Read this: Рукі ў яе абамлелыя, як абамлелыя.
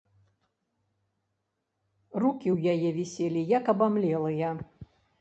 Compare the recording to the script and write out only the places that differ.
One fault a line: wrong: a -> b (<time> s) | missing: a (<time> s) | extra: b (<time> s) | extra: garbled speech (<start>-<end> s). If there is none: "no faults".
wrong: абамлелыя -> віселі (3.0 s)